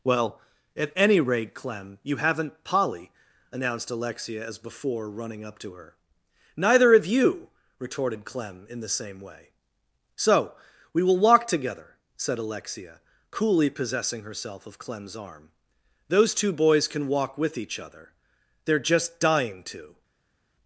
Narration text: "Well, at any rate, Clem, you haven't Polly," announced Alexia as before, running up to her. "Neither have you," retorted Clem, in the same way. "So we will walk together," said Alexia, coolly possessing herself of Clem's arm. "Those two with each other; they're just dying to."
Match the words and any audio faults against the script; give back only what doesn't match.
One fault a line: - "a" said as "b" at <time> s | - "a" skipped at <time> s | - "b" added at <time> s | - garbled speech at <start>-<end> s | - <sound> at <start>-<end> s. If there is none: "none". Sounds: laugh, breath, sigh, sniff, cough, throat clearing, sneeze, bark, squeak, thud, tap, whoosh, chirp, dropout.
- "boys can walk" added at 16.5 s